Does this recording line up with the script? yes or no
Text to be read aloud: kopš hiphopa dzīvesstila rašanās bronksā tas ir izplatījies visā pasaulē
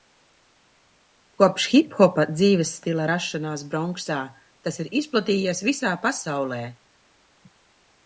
yes